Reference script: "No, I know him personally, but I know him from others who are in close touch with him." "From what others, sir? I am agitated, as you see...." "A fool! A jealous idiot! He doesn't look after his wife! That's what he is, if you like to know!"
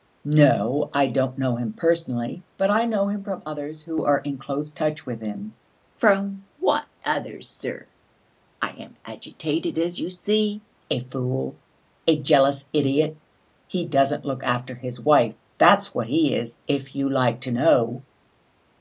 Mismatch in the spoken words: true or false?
true